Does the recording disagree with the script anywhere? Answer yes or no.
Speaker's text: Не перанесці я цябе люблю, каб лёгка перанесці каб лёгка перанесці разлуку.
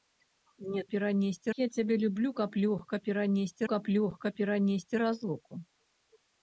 no